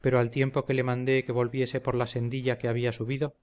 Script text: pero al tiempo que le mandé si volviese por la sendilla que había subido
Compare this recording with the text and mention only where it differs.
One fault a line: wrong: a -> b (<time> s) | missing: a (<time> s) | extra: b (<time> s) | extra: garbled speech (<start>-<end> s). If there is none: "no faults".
wrong: si -> que (1.2 s)